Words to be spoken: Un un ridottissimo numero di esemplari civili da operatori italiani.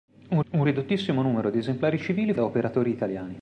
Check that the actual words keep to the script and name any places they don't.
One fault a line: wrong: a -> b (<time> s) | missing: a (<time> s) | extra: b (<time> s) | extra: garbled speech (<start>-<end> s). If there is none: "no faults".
no faults